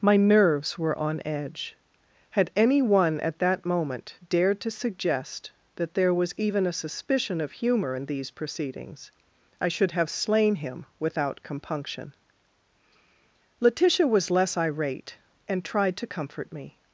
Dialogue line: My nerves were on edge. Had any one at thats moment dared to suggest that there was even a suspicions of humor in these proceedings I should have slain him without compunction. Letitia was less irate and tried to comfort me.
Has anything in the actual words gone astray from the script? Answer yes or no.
yes